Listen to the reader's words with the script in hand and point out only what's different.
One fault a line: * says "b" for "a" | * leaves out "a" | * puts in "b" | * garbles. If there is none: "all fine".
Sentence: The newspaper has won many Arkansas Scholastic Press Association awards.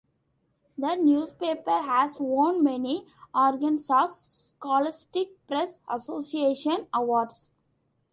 all fine